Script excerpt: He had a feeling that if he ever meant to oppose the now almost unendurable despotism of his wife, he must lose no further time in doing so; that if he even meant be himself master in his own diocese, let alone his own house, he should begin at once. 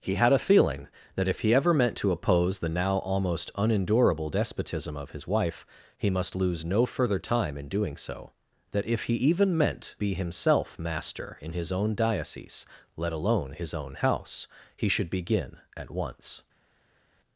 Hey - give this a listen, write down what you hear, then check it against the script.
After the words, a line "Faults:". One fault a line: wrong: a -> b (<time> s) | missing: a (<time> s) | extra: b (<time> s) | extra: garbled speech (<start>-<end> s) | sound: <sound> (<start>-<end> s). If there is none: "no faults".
He had a feeling that if he ever meant to oppose the now almost unendurable despotism of his wife, he must lose no further time in doing so; that if he even meant be himself master in his own diocese, let alone his own house, he should begin at once.
Faults:
no faults